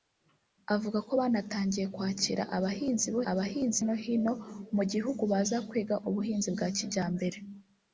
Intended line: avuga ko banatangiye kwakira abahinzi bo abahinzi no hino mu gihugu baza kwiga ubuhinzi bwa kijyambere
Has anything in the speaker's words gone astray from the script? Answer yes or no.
no